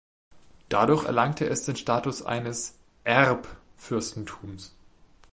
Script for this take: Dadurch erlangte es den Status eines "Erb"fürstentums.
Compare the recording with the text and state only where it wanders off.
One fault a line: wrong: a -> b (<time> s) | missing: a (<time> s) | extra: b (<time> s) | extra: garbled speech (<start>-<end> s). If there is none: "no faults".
no faults